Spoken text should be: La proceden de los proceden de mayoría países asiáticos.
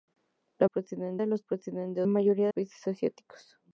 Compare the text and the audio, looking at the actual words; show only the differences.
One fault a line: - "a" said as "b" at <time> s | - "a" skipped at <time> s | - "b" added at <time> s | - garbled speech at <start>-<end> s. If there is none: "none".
none